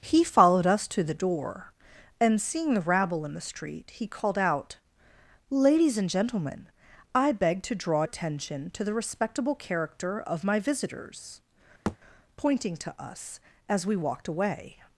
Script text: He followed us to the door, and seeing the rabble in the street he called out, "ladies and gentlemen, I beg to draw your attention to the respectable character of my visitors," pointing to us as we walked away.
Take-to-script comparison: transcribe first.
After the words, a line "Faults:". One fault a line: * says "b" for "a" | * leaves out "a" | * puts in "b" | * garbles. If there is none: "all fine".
He followed us to the door, and seeing the rabble in the street he called out, "ladies and gentlemen, I beg to draw attention to the respectable character of my visitors," pointing to us as we walked away.
Faults:
* leaves out "your"